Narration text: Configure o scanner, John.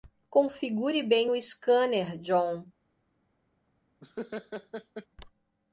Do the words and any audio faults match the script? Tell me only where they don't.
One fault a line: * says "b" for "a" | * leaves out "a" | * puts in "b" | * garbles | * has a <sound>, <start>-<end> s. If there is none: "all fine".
* puts in "bem"
* has a laugh, 4.0-5.1 s